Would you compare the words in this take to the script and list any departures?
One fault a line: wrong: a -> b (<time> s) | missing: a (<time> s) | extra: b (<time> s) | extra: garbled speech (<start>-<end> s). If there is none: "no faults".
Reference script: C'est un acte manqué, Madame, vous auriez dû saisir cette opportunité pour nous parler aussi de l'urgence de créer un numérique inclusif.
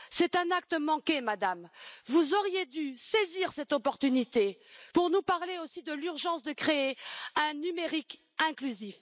no faults